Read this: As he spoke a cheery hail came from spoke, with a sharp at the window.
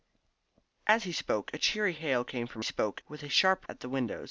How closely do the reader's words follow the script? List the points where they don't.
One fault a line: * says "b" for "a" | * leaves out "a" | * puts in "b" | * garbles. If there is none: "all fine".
all fine